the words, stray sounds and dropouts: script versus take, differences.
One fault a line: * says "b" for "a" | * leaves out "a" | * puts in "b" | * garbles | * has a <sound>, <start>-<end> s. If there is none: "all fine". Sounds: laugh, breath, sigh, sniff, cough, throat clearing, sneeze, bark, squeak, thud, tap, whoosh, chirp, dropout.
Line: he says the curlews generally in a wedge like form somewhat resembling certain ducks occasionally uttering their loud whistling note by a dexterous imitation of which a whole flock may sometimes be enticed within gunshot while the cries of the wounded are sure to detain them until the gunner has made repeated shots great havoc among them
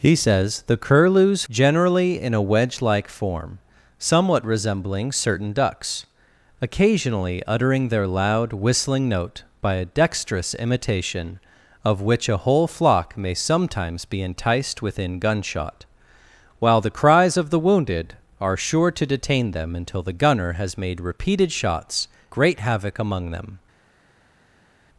all fine